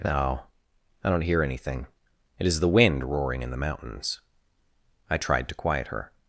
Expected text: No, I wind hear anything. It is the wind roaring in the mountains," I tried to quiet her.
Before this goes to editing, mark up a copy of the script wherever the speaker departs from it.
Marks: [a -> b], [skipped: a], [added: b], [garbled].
No, I [wind -> don't] hear anything. It is the wind roaring in the mountains," I tried to quiet her.